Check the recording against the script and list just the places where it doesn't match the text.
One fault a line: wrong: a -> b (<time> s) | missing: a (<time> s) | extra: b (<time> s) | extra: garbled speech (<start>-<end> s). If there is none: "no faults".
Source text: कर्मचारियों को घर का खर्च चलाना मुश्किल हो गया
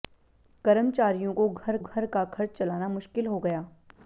extra: घर (1.8 s)